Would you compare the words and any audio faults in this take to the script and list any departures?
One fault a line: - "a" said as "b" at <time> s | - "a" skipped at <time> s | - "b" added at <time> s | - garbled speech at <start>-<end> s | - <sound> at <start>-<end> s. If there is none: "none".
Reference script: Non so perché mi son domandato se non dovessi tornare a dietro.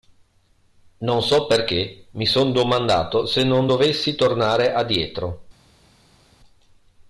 none